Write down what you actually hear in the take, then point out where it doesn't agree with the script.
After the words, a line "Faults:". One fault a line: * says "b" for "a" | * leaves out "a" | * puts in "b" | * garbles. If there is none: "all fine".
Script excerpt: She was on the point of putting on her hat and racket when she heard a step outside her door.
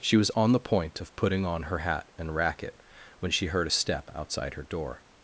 She was on the point of putting on her hat and racket when she heard a step outside her door.
Faults:
all fine